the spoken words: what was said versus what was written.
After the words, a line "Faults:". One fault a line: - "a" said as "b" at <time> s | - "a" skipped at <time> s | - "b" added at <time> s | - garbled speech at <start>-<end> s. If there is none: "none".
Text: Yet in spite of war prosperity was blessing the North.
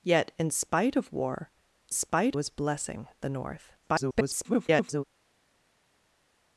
Yet in spite of war spite was blessing the North. [garbled]
Faults:
- "prosperity" said as "spite" at 1.9 s
- garbled speech at 3.8-5.0 s